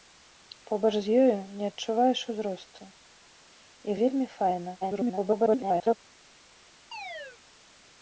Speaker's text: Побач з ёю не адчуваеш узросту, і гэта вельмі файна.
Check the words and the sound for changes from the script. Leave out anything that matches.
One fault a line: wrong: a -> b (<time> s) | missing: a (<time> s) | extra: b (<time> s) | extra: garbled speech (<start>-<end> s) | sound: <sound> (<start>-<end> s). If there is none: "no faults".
missing: гэта (4.0 s)
extra: garbled speech (4.8-6.0 s)
sound: chirp (6.9-7.4 s)